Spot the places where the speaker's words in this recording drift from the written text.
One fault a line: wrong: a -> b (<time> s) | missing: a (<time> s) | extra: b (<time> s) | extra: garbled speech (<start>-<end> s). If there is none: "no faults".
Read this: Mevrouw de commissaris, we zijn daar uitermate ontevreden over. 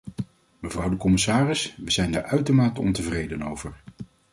no faults